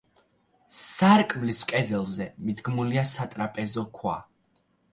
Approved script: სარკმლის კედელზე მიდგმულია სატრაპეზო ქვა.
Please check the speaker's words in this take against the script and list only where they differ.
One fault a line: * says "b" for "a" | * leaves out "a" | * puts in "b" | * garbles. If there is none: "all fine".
all fine